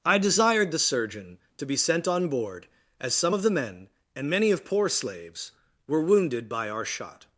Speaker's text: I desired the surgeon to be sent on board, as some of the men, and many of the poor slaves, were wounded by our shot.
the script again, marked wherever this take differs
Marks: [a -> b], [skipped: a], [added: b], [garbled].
I desired the surgeon to be sent on board, as some of the men, and many of [skipped: the] poor slaves, were wounded by our shot.